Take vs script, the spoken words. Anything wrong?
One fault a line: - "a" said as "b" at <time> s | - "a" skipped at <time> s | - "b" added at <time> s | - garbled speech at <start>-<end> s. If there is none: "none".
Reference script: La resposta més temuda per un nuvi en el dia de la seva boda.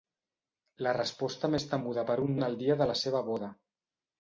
- "nuvi" skipped at 2.4 s